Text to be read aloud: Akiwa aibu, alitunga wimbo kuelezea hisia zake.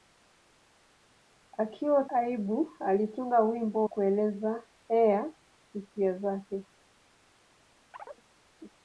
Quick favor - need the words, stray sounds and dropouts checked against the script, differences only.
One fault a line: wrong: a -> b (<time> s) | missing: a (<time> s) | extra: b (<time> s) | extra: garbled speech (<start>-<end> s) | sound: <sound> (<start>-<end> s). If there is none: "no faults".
sound: chirp (7.9-8.2 s)